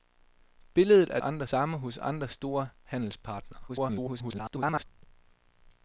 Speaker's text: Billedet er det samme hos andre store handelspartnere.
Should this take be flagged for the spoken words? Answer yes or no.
yes